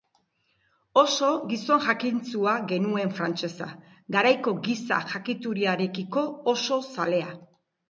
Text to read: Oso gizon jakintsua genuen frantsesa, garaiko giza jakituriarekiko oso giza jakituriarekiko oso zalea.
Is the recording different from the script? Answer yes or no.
yes